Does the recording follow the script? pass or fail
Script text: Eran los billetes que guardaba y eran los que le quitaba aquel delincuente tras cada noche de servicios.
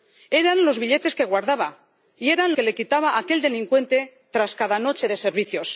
fail